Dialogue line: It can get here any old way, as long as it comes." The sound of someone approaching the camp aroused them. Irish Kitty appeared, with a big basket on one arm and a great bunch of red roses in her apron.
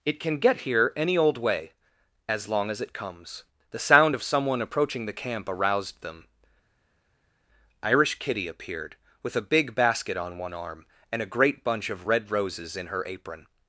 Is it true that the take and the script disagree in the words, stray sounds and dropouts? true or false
false